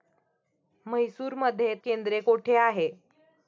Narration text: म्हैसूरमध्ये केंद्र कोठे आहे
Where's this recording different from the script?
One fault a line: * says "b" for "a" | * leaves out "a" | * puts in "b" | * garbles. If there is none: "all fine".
all fine